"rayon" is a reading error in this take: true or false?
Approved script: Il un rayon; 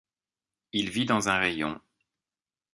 false